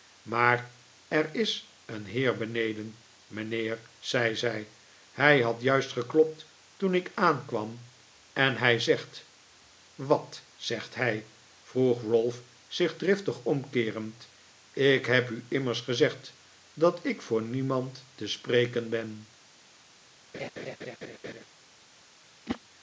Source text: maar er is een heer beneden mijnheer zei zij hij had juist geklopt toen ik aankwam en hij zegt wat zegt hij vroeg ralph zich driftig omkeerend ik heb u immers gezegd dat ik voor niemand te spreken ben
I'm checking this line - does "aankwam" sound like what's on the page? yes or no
yes